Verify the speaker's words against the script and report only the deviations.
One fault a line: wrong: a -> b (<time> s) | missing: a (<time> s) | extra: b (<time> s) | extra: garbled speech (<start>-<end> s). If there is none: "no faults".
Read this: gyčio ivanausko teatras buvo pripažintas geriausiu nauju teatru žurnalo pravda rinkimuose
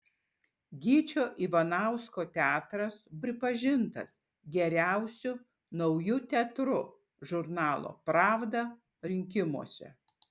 missing: buvo (3.0 s)